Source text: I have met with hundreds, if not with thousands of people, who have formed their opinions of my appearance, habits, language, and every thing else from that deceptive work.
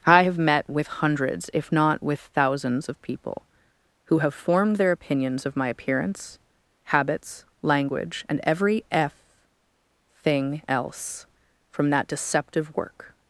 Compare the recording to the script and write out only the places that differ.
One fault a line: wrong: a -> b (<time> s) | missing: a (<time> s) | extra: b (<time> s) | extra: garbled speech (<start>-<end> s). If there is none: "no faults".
extra: f (8.9 s)